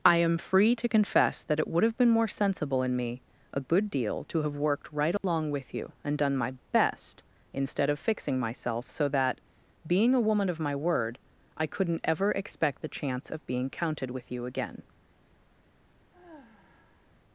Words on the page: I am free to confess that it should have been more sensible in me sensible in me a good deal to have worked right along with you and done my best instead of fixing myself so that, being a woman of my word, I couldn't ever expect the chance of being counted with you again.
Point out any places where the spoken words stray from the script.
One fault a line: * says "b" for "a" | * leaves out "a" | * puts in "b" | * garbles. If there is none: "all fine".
* says "would" for "should"
* leaves out "sensible in me"